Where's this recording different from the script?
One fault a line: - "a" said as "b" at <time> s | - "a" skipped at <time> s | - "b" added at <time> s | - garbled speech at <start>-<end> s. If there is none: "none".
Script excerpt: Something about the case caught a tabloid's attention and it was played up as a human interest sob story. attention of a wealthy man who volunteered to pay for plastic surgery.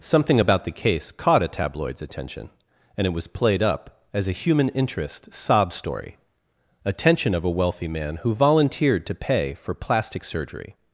none